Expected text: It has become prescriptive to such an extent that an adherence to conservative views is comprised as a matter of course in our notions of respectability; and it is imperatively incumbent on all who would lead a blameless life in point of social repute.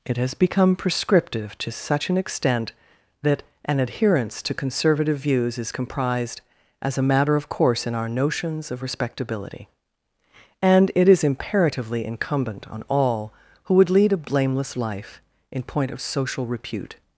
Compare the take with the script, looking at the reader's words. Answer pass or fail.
pass